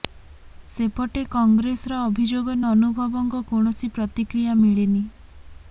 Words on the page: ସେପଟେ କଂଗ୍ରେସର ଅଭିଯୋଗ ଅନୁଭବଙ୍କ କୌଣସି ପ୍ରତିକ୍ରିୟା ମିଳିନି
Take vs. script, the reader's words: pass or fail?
pass